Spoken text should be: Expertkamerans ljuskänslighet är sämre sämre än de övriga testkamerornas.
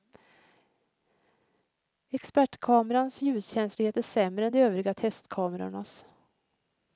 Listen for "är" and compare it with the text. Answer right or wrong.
right